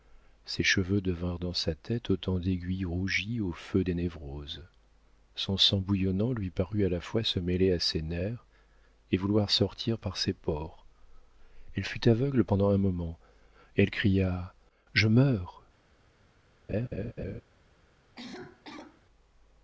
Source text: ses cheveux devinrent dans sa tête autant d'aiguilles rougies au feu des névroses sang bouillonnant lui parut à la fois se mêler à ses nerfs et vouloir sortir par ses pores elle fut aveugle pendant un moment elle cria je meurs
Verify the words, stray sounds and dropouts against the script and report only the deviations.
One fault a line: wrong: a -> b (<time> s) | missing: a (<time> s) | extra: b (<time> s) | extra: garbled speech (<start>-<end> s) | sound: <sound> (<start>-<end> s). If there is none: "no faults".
extra: son (5.3 s)
sound: laugh (16.7-17.4 s)
sound: cough (18.1-19.0 s)